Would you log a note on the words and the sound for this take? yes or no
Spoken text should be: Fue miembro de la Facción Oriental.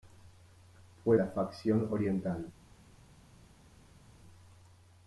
yes